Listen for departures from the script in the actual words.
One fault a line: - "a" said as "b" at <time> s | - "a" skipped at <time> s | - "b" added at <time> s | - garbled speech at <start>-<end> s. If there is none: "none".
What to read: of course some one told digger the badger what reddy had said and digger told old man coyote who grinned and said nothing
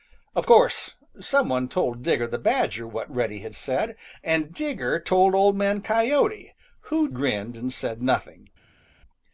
none